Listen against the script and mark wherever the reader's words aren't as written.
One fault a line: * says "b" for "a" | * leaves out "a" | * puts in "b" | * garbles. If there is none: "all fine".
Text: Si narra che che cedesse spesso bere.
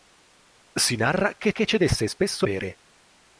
all fine